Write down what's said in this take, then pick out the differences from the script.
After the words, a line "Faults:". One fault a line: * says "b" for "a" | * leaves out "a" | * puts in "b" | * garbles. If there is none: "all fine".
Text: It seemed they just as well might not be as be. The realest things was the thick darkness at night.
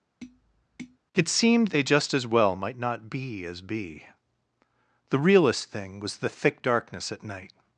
It seemed they just as well might not be as be. The realest thing was the thick darkness at night.
Faults:
* says "thing" for "things"